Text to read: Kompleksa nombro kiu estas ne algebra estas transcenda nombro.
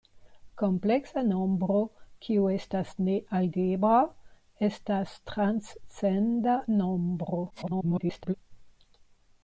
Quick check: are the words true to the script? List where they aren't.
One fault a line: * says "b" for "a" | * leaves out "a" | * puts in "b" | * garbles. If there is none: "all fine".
* garbles